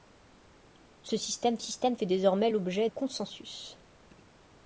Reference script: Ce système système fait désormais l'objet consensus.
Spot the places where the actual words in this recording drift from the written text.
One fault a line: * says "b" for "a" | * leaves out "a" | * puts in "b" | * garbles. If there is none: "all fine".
all fine